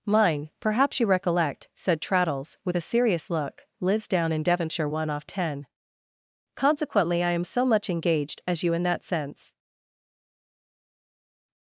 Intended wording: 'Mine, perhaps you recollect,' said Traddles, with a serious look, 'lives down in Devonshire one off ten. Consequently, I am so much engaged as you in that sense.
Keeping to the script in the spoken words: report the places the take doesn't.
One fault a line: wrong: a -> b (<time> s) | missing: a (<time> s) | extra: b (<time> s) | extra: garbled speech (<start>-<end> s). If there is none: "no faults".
no faults